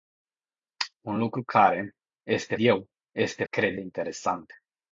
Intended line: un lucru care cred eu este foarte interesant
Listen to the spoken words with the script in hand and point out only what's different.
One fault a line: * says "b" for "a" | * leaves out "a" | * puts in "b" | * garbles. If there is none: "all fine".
* says "este" for "cred"
* says "cred" for "foarte"